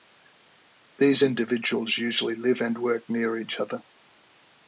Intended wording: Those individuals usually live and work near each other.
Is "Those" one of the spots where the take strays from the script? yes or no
yes